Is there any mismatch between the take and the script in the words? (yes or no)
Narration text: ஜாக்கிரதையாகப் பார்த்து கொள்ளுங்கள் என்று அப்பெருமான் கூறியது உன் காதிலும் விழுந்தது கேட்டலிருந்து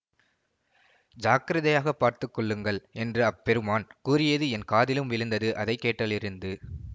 yes